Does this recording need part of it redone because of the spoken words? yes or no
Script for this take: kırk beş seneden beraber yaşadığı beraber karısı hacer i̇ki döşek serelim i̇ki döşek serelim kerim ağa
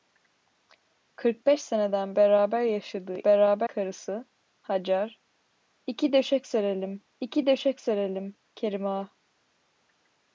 no